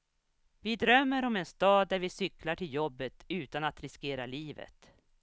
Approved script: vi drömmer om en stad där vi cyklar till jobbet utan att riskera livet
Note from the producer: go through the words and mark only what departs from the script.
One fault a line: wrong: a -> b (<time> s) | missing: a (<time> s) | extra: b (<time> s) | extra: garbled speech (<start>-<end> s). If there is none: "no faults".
no faults